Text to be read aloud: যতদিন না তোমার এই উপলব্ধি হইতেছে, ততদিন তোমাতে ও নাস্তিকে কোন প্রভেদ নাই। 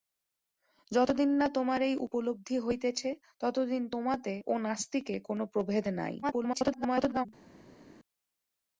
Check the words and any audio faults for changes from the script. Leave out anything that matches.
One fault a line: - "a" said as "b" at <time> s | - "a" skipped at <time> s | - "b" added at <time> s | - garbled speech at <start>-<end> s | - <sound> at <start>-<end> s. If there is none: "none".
- garbled speech at 6.2-7.3 s